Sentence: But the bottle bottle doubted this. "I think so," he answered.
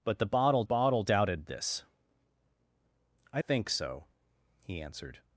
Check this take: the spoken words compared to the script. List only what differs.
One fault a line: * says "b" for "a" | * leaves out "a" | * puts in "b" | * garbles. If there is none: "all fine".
all fine